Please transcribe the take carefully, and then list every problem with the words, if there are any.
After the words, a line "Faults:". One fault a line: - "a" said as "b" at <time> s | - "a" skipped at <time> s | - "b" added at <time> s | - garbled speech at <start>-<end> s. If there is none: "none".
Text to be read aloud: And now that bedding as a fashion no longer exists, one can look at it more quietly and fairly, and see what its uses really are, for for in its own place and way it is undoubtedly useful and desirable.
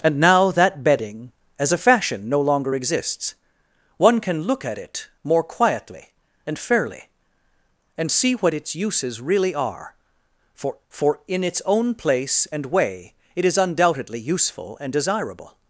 And now that bedding as a fashion no longer exists, one can look at it more quietly and fairly, and see what its uses really are, for for in its own place and way it is undoubtedly useful and desirable.
Faults:
none